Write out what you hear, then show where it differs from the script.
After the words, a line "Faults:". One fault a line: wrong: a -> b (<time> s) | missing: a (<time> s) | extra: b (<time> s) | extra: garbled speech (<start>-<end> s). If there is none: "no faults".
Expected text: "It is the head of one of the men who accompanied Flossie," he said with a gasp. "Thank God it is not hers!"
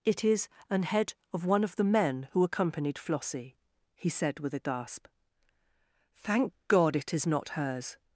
"It is an head of one of the men who accompanied Flossie," he said with a gasp. "Thank God it is not hers!"
Faults:
wrong: the -> an (0.7 s)